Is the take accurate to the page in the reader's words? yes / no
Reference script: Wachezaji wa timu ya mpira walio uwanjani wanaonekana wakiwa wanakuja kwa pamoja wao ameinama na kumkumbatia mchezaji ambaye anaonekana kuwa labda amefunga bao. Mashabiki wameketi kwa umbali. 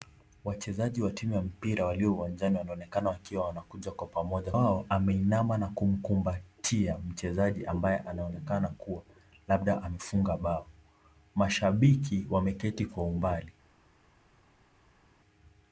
yes